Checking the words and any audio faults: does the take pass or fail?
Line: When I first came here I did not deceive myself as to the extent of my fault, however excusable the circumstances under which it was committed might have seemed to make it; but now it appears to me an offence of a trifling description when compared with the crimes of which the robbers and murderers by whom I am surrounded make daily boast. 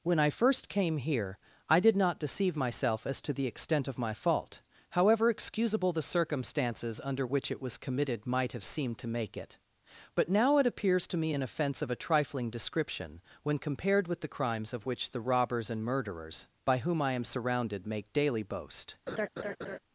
fail